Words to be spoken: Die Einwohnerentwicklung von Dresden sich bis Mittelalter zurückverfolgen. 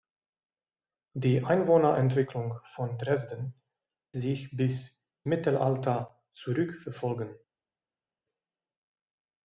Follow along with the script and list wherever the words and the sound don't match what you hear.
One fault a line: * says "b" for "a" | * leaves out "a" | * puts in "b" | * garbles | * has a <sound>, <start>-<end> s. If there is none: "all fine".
all fine